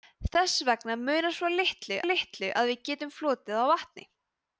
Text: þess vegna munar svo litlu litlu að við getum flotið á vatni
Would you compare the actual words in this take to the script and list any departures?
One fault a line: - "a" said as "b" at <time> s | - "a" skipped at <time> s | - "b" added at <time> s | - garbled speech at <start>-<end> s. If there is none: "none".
none